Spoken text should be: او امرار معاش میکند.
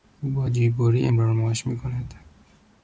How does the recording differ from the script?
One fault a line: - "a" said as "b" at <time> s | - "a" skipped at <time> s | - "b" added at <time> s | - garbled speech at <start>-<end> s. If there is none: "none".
- "با جیببری" added at 0.3 s